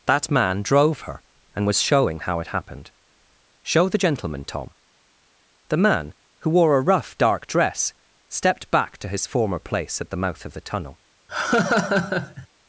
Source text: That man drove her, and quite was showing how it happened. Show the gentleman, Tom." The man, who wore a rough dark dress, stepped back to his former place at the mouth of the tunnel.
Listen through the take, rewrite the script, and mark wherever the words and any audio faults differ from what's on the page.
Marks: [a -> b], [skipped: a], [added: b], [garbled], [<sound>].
That man drove her, and [skipped: quite] was showing how it happened. Show the gentleman, Tom." The man, who wore a rough dark dress, stepped back to his former place at the mouth of the tunnel. [laugh]